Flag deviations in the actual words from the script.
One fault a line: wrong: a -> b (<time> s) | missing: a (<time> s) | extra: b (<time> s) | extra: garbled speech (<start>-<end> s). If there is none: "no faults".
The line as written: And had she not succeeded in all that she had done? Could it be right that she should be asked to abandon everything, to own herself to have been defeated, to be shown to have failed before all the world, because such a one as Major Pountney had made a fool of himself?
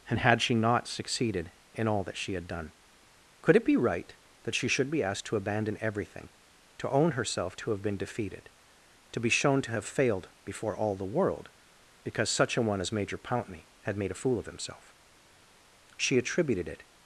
extra: She attributed it (16.0 s)